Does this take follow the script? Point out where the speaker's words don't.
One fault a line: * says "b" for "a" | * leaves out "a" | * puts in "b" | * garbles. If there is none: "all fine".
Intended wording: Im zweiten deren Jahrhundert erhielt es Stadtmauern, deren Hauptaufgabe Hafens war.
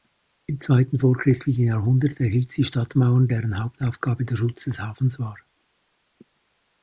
* says "vorchristlichen" for "deren"
* says "sie" for "es"
* puts in "der Schutz des"